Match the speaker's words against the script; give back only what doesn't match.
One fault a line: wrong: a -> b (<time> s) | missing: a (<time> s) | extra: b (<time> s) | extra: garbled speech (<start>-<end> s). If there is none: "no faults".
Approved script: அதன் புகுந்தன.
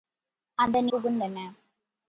no faults